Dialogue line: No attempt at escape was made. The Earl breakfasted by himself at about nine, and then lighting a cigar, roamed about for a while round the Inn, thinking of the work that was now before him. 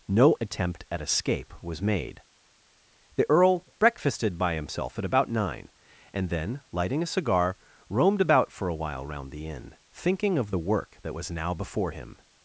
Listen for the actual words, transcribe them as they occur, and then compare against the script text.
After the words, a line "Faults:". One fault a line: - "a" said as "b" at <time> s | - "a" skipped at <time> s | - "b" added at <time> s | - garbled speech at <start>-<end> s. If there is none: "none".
No attempt at escape was made. The Earl breakfasted by himself at about nine, and then lighting a cigar, roamed about for a while round the Inn, thinking of the work that was now before him.
Faults:
none